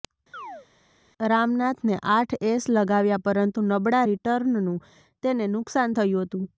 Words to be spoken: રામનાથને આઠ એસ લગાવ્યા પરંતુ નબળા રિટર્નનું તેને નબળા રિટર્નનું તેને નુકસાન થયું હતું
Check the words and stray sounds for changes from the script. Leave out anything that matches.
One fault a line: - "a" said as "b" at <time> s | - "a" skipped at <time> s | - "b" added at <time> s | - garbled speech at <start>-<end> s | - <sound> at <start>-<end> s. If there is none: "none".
- chirp at 0.3-0.7 s
- "નબળા રિટર્નનું તેને" skipped at 5.5 s